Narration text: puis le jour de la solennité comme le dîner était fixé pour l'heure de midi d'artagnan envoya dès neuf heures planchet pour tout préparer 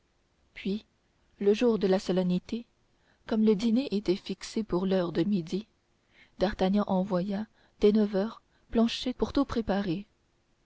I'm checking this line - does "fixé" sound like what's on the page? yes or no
yes